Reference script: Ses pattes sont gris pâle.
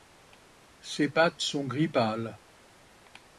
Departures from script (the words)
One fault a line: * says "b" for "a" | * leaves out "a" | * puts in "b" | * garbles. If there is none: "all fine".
all fine